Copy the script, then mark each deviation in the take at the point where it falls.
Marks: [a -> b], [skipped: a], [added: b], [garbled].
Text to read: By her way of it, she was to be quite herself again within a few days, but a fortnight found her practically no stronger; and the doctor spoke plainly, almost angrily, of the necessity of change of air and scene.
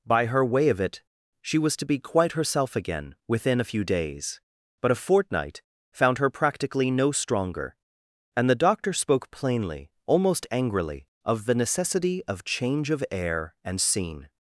By her way of it, she was to be quite herself again within a few days, but a fortnight found her practically no stronger; and the doctor spoke plainly, almost angrily, of the necessity of change of air and scene.